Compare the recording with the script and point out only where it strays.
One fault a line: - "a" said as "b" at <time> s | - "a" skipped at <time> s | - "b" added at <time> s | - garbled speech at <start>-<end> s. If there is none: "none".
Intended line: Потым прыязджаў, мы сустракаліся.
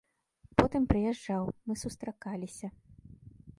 none